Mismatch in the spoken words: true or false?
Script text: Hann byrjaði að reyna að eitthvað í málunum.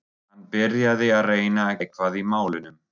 false